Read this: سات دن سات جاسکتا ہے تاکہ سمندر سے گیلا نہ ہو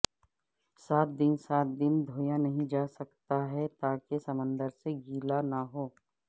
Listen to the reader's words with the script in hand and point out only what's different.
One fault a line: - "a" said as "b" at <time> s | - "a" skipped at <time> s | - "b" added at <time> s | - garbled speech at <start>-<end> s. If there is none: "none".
- "دن دھویا نہیں" added at 1.8 s